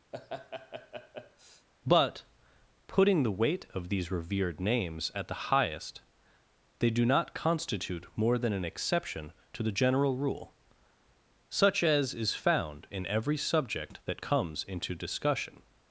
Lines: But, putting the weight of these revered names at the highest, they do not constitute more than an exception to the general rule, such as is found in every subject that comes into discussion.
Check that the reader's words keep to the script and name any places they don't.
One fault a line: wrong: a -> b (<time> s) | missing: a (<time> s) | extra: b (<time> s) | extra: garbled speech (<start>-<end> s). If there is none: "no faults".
no faults